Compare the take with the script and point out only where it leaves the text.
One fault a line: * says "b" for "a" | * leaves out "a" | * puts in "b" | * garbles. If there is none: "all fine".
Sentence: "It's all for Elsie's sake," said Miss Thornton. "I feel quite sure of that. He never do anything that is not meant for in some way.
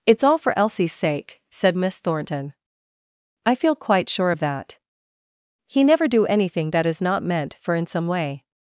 all fine